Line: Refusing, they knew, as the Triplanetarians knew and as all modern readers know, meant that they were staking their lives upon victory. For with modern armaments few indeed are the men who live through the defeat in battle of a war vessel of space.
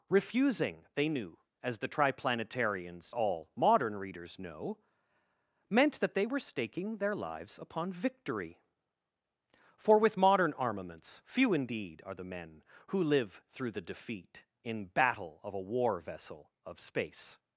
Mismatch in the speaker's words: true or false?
true